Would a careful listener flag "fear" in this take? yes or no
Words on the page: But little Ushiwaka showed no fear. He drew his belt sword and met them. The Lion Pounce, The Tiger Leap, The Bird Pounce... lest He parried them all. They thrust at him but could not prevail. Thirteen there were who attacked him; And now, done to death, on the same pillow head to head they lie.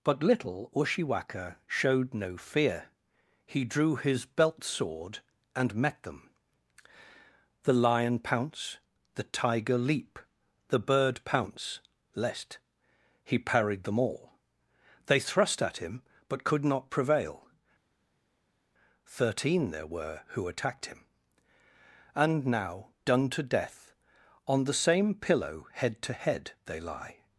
no